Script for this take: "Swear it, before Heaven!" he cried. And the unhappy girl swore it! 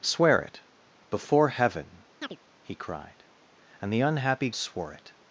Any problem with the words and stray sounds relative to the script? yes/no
yes